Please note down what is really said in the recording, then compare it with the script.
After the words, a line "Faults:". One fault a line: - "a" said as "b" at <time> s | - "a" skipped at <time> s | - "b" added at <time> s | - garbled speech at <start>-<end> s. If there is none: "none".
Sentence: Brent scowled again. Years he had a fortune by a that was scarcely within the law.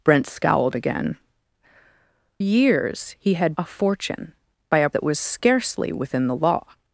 Brent scowled again. Years he had a fortune by a that was scarcely within the law.
Faults:
none